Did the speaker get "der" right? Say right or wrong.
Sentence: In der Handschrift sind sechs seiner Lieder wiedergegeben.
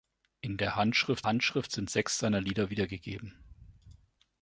right